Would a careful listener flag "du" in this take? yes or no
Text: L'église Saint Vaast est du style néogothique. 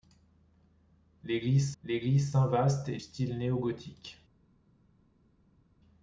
yes